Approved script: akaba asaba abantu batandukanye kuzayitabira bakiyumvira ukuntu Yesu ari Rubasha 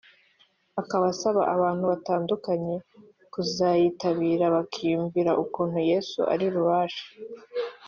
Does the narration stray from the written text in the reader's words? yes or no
no